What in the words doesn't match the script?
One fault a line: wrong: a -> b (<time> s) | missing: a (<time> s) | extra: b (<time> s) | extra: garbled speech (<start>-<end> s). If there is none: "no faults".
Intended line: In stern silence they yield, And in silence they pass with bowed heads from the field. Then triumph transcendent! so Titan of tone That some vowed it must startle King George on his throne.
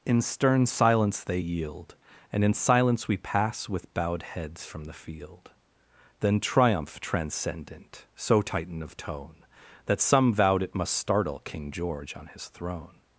wrong: they -> we (3.1 s)